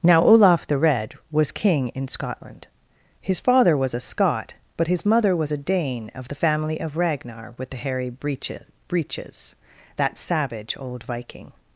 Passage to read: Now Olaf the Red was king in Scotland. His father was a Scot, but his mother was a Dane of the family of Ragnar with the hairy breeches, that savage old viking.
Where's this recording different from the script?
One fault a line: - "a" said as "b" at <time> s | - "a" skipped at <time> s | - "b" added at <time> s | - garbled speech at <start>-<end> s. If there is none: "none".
- "breeches" added at 8.9 s